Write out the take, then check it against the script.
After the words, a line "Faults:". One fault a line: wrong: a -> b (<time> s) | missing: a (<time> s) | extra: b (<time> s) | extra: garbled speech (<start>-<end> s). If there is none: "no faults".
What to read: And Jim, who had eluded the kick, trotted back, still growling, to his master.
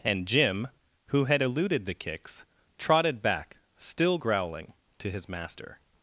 And Jim, who had eluded the kicks, trotted back, still growling, to his master.
Faults:
wrong: kick -> kicks (1.9 s)